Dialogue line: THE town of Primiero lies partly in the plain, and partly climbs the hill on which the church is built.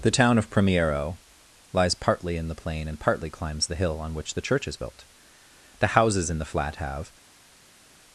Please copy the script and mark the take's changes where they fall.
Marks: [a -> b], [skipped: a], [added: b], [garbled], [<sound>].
THE town of Primiero lies partly in the plain, and partly climbs the hill on which the church is built. [added: The houses in the flat have]